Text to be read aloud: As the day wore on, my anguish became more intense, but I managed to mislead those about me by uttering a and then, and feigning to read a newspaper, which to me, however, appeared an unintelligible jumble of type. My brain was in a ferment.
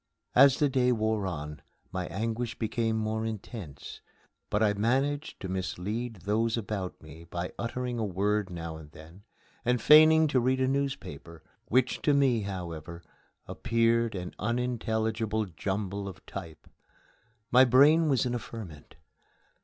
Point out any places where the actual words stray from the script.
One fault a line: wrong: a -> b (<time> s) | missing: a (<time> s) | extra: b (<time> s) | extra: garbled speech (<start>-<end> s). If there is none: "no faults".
extra: word now (8.0 s)